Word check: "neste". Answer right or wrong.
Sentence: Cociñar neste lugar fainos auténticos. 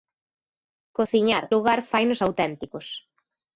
wrong